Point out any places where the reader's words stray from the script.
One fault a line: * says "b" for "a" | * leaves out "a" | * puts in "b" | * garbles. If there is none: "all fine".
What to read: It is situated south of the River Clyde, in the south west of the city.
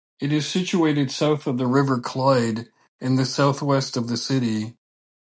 all fine